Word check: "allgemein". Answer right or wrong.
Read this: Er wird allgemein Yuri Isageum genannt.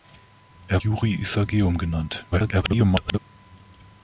wrong